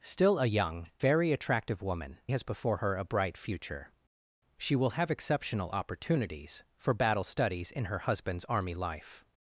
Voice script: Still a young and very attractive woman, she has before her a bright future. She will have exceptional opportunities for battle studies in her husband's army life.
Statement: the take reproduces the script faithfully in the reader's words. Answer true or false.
false